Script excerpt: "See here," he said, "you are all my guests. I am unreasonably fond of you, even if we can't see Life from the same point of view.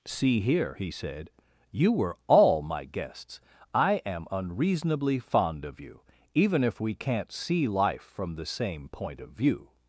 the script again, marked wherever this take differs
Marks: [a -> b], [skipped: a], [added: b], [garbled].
"See here," he said, "you [are -> were] all my guests. I am unreasonably fond of you, even if we can't see Life from the same point of view.